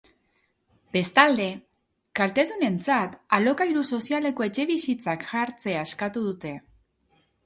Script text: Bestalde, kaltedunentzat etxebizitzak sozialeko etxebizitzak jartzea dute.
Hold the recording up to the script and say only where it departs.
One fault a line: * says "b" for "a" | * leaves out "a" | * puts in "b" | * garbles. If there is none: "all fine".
* says "alokairu" for "etxebizitzak"
* puts in "eskatu"